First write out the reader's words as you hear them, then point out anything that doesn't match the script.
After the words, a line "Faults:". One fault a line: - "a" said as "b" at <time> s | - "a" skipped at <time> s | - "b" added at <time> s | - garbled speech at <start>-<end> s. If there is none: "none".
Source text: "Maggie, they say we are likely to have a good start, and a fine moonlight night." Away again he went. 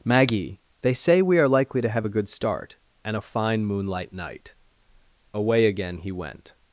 "Maggie, they say we are likely to have a good start, and a fine moonlight night." Away again he went.
Faults:
none